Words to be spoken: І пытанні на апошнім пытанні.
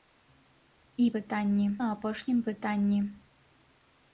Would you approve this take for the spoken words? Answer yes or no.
yes